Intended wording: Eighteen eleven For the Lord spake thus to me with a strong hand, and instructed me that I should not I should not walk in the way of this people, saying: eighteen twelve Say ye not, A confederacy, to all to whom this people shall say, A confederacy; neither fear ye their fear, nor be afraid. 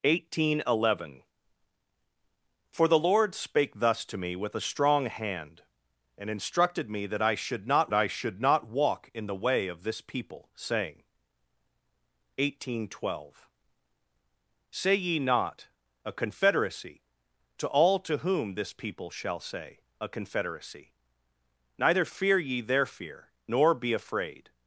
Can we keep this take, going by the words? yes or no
yes